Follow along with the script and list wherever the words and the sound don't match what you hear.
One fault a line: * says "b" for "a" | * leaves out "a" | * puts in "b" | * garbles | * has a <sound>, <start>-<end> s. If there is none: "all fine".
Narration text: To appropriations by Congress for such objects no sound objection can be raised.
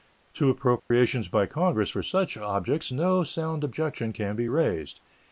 * has a dropout, 0.8-0.9 s